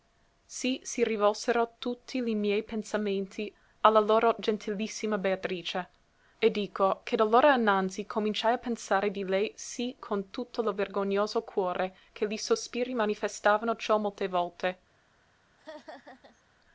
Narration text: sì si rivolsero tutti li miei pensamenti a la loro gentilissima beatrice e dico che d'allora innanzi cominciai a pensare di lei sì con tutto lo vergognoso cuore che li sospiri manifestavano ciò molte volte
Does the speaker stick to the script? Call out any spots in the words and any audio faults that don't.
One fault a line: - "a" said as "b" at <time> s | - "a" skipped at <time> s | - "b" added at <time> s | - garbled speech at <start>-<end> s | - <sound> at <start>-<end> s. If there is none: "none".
- laugh at 15.6-16.4 s